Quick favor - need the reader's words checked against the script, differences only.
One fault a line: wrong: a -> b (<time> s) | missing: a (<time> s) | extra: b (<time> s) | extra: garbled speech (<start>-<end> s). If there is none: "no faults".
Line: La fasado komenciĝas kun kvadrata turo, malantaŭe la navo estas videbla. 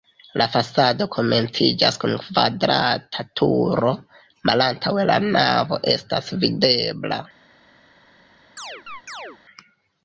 no faults